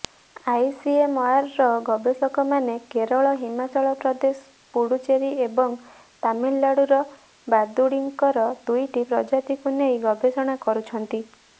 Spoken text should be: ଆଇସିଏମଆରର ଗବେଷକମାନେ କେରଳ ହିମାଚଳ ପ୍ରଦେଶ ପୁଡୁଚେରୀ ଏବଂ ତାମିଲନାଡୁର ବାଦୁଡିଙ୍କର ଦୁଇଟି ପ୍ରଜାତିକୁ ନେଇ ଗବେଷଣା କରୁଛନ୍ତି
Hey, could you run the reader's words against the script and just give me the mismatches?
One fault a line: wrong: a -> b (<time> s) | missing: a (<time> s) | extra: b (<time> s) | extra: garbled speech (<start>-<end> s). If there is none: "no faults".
no faults